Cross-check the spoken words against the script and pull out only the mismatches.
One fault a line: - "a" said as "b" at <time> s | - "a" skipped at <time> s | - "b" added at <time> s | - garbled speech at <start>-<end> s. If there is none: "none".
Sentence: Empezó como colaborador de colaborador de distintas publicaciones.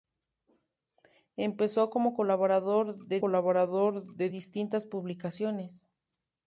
none